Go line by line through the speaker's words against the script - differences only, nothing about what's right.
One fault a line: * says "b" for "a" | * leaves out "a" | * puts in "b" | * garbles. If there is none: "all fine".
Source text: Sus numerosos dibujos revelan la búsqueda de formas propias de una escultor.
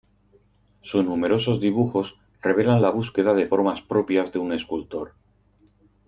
* says "un" for "una"